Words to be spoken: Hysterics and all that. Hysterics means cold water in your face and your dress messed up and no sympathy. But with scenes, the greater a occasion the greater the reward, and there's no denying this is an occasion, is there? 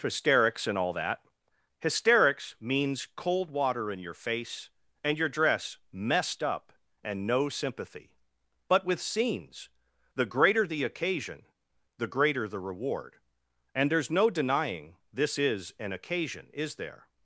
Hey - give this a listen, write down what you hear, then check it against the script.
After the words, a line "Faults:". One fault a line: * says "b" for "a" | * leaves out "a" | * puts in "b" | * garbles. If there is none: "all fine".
Hysterics and all that. Hysterics means cold water in your face and your dress messed up and no sympathy. But with scenes, the greater the occasion the greater the reward, and there's no denying this is an occasion, is there?
Faults:
* says "the" for "a"